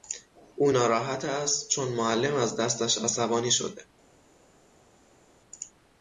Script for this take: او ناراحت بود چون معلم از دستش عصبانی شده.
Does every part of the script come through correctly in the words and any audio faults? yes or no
no